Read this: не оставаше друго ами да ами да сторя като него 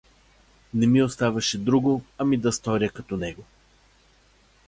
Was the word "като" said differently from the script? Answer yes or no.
no